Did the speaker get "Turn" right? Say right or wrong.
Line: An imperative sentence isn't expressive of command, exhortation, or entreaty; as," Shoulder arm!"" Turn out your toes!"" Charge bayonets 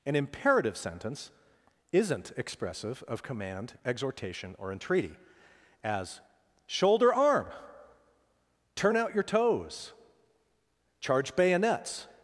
right